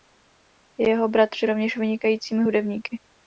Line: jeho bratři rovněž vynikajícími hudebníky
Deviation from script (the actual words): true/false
false